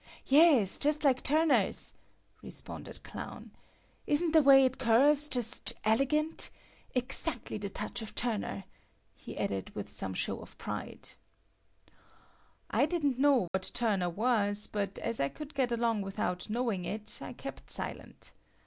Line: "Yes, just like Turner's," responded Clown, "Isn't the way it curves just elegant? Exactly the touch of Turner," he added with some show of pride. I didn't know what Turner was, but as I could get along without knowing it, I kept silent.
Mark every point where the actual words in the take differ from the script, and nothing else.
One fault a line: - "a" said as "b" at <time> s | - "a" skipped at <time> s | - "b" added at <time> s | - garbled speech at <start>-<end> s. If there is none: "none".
none